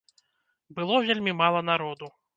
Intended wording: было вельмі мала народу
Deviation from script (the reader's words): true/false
false